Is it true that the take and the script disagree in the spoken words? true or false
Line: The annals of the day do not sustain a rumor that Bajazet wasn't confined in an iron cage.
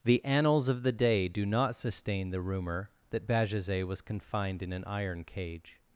true